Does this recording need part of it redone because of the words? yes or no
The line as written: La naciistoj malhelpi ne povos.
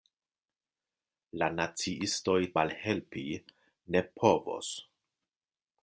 no